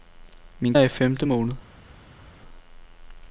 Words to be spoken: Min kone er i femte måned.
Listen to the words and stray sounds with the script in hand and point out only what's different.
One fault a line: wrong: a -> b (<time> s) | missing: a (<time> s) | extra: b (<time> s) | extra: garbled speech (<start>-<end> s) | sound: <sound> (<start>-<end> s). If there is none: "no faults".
missing: kone (0.8 s)